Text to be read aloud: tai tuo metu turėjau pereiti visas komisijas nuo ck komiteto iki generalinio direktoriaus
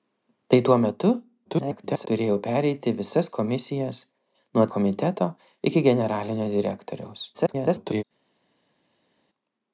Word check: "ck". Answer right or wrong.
wrong